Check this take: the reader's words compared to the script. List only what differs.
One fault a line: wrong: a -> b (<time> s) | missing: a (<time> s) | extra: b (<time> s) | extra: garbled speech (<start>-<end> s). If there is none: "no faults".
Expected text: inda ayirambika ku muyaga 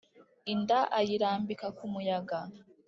no faults